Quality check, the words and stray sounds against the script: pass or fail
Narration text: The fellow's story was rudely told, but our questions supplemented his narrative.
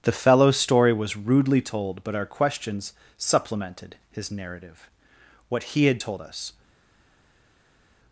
fail